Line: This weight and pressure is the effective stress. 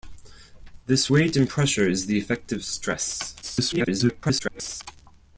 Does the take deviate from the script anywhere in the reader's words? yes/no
yes